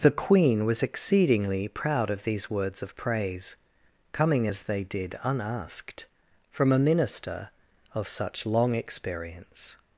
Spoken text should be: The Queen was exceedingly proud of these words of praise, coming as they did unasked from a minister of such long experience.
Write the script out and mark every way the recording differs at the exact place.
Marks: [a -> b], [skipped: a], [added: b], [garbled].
The Queen was exceedingly proud of these words of praise, coming as they did unasked from a minister of such long experience.